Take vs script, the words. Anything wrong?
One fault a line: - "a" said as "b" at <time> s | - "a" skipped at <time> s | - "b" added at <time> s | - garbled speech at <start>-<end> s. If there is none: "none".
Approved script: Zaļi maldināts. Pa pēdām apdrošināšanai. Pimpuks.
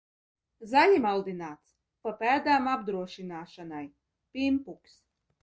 none